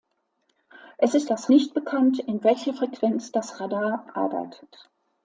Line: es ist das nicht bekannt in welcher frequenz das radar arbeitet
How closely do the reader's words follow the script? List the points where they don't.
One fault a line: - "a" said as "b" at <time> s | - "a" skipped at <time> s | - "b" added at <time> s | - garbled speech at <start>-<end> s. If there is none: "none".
none